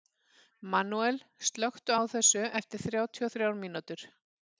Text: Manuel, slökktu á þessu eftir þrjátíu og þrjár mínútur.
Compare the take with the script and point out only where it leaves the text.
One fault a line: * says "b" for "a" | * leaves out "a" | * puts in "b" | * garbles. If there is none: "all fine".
all fine